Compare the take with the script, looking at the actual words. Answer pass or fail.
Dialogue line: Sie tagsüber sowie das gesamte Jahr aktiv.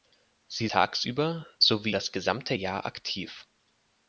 pass